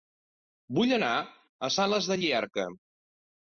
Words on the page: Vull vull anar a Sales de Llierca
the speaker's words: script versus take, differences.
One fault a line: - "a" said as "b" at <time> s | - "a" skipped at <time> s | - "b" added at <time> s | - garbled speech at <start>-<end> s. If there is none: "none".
- "vull" skipped at 0.9 s